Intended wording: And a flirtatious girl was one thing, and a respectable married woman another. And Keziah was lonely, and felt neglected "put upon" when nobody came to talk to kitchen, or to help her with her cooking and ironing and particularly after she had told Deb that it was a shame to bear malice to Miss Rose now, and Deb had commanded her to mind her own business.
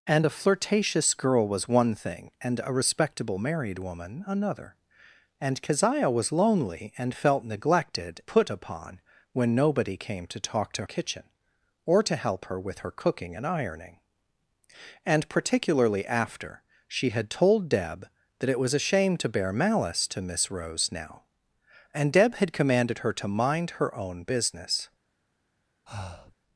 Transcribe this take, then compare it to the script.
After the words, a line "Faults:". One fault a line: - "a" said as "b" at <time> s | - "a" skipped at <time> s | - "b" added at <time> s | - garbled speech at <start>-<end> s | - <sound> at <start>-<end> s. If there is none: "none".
And a flirtatious girl was one thing, and a respectable married woman another. And Keziah was lonely, and felt neglected "put upon" when nobody came to talk to kitchen, or to help her with her cooking and ironing and particularly after she had told Deb that it was a shame to bear malice to Miss Rose now, and Deb had commanded her to mind her own business.
Faults:
- breath at 25.9-26.4 s